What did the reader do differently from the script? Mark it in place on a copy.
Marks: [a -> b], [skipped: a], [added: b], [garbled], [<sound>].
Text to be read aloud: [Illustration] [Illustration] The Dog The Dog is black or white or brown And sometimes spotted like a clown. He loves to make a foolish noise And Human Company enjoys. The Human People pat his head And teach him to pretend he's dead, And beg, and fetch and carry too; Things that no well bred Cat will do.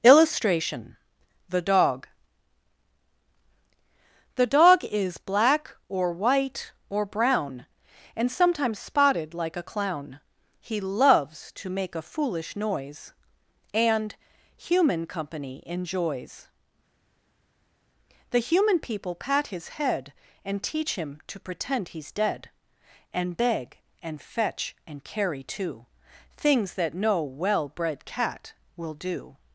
[Illustration] [skipped: [Illustration]] The Dog The Dog is black or white or brown And sometimes spotted like a clown. He loves to make a foolish noise And Human Company enjoys. The Human People pat his head And teach him to pretend he's dead, And beg, and fetch and carry too; Things that no well bred Cat will do.